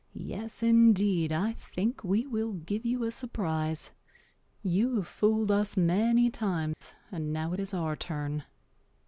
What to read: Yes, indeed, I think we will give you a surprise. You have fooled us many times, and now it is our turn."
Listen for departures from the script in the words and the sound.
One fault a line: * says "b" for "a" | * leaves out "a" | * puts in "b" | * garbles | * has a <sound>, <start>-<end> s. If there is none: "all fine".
* has a dropout, 6.7-6.8 s